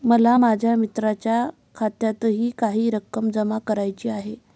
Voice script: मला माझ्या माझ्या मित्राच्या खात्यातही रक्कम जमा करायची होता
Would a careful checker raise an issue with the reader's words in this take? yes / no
yes